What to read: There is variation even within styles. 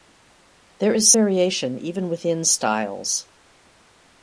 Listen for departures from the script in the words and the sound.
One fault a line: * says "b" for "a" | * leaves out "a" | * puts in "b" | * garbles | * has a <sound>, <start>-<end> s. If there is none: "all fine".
all fine